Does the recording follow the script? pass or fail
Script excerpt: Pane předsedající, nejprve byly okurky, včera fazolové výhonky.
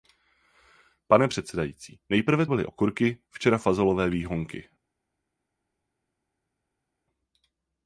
pass